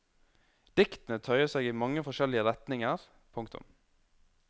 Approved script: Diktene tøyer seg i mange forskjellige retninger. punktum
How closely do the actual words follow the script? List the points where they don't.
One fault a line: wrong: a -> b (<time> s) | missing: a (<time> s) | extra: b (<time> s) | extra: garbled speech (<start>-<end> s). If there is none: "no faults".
no faults